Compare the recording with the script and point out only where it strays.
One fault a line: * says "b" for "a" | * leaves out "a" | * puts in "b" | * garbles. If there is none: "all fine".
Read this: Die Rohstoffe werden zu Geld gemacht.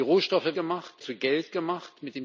* says "gemacht" for "werden"